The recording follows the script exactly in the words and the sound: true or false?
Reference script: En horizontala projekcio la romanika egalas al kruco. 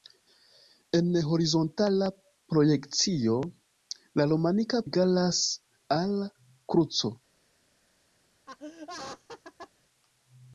false